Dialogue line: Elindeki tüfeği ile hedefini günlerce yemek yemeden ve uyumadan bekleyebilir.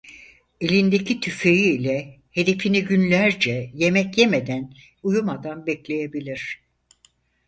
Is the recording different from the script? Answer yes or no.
yes